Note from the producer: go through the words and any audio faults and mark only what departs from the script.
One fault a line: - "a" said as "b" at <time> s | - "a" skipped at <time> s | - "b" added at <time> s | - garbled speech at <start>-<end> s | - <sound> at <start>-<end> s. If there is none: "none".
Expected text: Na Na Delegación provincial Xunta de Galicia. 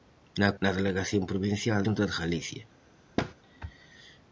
- thud at 3.2-3.3 s